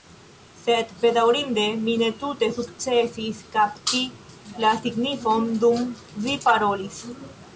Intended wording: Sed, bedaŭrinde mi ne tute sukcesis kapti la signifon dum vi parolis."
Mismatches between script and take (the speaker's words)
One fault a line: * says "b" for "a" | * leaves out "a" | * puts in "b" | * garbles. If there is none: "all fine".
all fine